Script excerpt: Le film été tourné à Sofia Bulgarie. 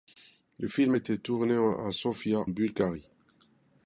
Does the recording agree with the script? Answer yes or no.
yes